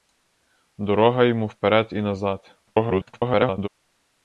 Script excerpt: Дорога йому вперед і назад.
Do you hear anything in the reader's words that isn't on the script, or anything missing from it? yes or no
yes